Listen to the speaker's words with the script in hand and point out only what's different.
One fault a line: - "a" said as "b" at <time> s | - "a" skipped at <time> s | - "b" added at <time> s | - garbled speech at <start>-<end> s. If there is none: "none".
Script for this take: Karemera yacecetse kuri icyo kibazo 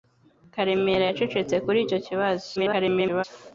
- garbled speech at 2.6-3.2 s